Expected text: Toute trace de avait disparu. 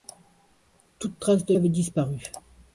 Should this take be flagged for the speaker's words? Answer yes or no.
no